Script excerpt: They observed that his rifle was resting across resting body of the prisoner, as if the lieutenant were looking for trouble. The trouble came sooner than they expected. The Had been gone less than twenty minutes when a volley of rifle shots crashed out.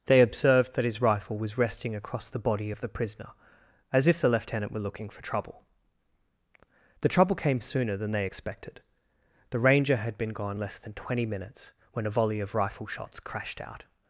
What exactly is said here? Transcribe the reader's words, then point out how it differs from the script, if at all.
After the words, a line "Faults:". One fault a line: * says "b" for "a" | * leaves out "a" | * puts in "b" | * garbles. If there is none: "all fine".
They observed that his rifle was resting across the body of the prisoner, as if the lieutenant were looking for trouble. The trouble came sooner than they expected. The Ranger had been gone less than twenty minutes when a volley of rifle shots crashed out.
Faults:
* says "the" for "resting"
* puts in "Ranger"